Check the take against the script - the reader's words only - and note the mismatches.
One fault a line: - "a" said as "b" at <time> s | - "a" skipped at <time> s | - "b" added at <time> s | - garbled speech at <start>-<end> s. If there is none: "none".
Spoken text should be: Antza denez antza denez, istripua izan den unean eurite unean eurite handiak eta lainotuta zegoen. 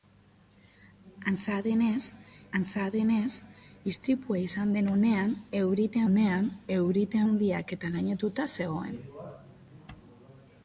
none